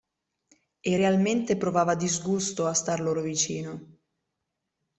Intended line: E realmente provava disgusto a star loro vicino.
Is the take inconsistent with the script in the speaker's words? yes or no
no